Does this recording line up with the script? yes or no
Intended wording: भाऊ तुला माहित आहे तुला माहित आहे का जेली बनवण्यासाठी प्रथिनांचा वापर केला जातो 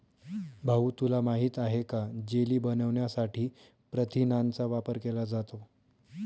no